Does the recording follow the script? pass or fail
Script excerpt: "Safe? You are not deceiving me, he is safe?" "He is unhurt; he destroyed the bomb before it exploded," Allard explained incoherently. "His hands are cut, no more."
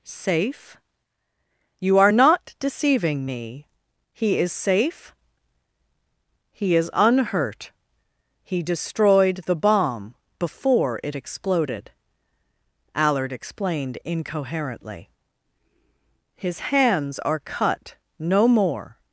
pass